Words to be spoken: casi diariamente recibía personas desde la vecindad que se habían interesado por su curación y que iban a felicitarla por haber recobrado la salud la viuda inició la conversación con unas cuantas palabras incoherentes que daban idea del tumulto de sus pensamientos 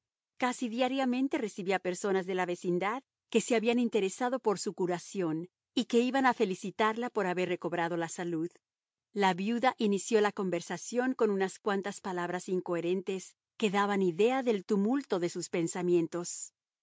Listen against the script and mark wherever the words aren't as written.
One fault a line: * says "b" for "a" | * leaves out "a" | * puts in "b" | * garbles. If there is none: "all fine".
* says "de" for "desde"